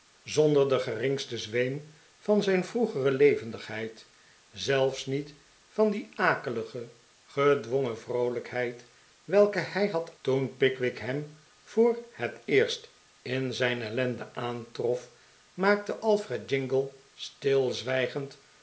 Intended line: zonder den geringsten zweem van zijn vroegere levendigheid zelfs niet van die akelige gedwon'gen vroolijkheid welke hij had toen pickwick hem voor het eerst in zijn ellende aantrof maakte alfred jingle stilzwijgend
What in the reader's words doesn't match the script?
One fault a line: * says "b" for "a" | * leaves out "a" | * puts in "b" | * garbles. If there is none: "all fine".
all fine